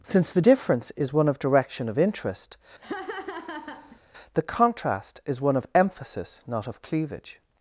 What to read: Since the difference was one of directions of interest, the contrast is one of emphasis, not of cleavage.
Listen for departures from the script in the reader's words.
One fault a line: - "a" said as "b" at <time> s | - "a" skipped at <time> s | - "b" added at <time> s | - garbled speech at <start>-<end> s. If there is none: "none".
- "was" said as "is" at 1.0 s
- "directions" said as "direction" at 1.4 s